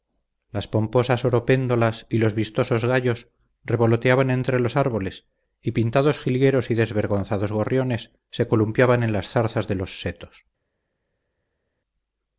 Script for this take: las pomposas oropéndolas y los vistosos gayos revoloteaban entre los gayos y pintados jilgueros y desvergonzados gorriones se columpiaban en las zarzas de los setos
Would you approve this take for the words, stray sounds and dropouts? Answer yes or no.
no